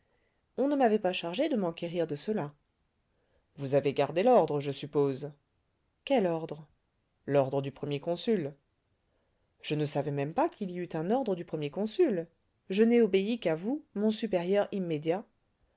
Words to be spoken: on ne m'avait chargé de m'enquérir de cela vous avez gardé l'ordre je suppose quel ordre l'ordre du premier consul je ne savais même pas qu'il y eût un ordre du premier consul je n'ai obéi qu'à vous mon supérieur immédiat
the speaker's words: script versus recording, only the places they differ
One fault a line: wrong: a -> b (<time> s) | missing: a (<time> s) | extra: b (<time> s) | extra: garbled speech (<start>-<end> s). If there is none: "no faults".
extra: pas (1.0 s)